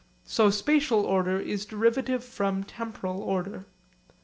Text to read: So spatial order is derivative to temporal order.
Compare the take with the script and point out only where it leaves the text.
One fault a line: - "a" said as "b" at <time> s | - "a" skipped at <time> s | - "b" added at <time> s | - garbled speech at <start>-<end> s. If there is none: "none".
- "to" said as "from" at 2.2 s